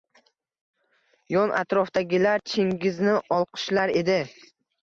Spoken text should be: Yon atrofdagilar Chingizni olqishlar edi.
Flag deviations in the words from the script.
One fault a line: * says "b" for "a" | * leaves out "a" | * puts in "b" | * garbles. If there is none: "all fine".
all fine